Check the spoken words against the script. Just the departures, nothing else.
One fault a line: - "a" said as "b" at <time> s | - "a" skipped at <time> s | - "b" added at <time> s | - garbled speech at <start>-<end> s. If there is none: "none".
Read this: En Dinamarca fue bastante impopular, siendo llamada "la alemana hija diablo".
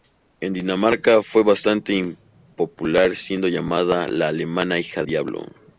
none